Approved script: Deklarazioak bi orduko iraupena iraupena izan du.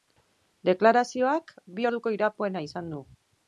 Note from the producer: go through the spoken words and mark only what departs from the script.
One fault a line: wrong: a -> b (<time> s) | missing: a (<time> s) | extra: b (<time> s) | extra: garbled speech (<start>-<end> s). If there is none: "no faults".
missing: iraupena (2.7 s)